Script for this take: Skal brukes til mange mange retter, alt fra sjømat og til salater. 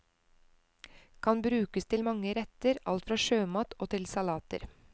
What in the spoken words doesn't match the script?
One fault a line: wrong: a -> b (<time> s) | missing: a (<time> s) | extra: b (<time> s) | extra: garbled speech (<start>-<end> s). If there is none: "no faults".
wrong: Skal -> Kan (1.2 s)
missing: mange (2.3 s)